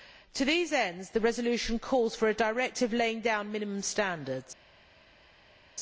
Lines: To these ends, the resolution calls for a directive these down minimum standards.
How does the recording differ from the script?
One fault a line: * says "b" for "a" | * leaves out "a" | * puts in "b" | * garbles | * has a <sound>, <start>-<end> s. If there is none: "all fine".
* says "laying" for "these"